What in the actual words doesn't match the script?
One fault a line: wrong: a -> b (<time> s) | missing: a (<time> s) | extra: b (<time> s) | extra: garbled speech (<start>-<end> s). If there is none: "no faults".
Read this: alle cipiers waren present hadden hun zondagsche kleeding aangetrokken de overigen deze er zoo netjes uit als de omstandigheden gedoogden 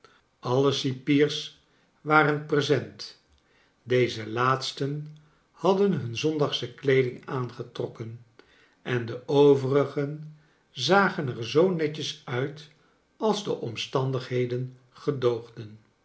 extra: deze laatsten (3.8 s)
extra: en (8.8 s)
wrong: deze -> zagen (10.7 s)